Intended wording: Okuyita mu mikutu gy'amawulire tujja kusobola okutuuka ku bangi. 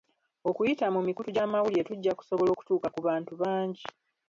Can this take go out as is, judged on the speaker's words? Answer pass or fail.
fail